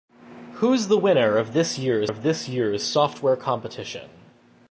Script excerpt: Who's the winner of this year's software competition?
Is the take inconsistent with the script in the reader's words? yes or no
yes